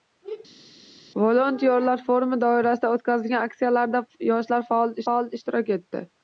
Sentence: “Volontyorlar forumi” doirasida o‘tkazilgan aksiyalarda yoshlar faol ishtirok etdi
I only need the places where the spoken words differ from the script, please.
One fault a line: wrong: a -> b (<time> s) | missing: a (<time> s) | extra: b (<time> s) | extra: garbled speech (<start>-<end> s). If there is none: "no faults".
extra: faol (5.1 s)